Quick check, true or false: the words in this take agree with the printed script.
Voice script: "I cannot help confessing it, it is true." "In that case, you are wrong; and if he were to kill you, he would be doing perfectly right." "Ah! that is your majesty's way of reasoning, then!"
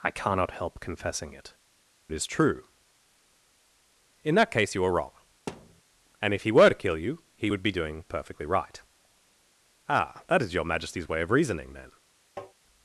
true